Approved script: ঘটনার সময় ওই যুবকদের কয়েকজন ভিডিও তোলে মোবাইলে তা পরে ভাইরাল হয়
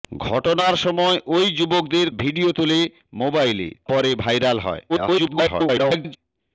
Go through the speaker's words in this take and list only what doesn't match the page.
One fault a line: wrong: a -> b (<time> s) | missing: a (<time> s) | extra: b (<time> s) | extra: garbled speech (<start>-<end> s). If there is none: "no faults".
missing: কয়েকজন (2.1 s)
missing: তা (3.7 s)
extra: garbled speech (4.9-6.2 s)